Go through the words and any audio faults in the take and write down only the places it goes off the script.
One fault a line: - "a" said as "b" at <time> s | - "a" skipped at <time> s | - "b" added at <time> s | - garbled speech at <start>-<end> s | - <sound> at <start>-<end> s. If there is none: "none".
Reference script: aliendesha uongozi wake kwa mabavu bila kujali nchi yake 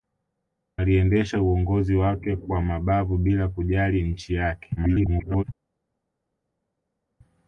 - garbled speech at 4.8-5.4 s